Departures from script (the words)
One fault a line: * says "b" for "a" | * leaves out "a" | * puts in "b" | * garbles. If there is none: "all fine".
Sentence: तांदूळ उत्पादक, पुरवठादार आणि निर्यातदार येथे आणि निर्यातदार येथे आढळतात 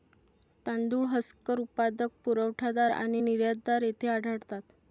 * puts in "हस्कर"
* leaves out "आणि निर्यातदार येथे"